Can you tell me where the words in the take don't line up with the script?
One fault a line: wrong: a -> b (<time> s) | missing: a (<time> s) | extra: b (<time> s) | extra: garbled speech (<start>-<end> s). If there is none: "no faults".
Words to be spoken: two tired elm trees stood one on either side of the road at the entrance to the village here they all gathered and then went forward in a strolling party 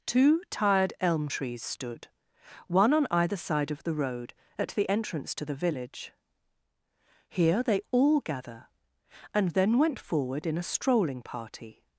wrong: gathered -> gather (8.2 s)